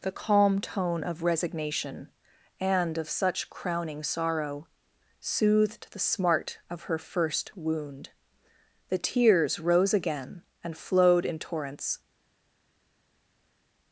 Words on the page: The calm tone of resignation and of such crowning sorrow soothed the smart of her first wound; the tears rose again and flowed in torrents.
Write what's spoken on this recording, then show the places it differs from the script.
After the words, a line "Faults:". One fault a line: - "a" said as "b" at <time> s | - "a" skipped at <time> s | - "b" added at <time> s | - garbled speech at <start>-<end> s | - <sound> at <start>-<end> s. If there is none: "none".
The calm tone of resignation and of such crowning sorrow soothed the smart of her first wound; the tears rose again and flowed in torrents.
Faults:
none